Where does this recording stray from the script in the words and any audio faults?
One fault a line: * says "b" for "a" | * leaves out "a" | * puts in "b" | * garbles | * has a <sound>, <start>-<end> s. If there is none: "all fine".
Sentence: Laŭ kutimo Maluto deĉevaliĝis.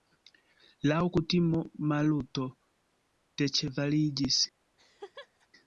* has a laugh, 4.8-5.5 s